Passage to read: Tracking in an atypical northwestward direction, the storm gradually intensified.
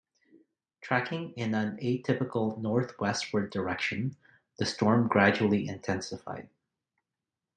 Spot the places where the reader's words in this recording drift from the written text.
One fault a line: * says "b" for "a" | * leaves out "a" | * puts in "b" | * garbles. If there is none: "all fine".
all fine